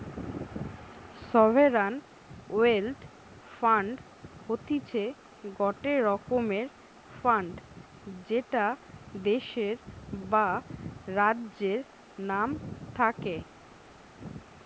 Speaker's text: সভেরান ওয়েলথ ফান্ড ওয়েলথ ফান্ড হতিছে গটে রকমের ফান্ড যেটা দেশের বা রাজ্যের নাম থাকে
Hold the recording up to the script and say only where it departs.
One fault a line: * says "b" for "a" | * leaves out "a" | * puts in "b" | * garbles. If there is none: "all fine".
* leaves out "ওয়েলথ ফান্ড"